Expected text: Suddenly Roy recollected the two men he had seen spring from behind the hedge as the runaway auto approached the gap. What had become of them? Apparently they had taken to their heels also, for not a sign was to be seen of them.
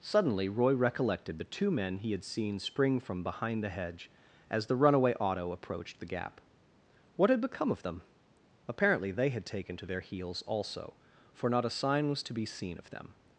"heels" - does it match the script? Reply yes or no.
yes